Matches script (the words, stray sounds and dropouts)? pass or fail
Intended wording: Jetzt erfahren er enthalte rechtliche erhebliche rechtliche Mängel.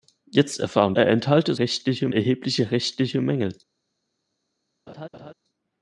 fail